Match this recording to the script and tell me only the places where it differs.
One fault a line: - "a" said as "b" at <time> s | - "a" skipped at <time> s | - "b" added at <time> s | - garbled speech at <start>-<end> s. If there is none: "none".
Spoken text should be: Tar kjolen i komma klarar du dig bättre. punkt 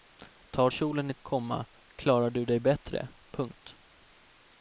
none